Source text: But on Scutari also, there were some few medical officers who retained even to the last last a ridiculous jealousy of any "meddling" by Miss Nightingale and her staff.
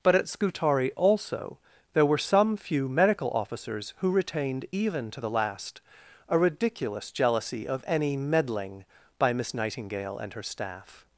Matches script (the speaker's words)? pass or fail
fail